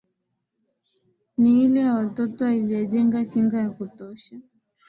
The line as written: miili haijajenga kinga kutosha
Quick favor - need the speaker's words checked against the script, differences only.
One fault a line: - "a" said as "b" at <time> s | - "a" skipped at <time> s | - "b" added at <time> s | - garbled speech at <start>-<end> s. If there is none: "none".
- "ya watoto" added at 1.8 s
- "ya" added at 3.6 s